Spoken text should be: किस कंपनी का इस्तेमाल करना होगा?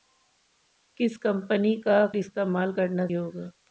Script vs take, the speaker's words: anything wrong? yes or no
no